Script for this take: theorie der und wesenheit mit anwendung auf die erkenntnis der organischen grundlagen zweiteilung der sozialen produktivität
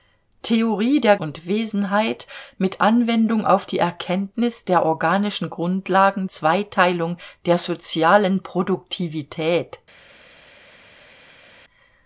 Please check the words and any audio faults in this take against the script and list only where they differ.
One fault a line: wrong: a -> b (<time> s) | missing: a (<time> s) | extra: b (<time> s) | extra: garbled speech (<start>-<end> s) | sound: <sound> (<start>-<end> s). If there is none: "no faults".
no faults